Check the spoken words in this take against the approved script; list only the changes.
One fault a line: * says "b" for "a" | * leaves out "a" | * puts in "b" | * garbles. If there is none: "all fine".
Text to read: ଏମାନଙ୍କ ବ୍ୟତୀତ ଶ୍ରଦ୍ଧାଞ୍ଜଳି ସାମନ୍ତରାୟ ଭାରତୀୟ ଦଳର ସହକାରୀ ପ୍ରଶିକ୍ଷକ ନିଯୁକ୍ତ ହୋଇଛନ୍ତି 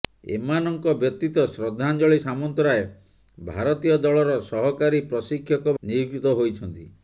all fine